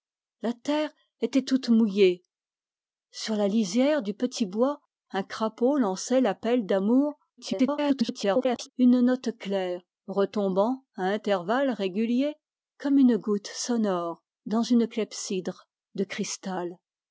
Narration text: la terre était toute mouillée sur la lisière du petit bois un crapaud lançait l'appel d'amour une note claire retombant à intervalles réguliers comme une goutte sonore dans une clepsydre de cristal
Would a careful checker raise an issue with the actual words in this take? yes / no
yes